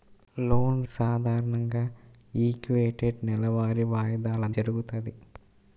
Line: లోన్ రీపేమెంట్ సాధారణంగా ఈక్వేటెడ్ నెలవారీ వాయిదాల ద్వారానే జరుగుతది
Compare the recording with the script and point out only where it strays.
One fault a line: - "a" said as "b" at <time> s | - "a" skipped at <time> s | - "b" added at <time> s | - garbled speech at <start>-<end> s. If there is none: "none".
- "రీపేమెంట్" skipped at 0.8 s
- "ద్వారానే" skipped at 4.5 s